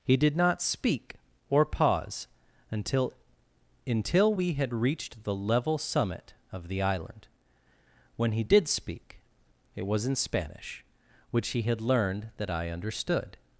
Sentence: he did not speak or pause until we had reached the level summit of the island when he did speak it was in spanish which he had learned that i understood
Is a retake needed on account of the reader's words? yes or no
yes